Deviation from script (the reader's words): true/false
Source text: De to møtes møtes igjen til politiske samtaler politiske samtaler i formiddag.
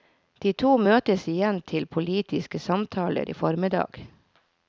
true